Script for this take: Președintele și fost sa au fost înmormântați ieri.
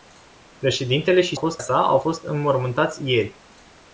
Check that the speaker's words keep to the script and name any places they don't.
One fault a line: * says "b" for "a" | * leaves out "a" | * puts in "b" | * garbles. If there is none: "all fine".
all fine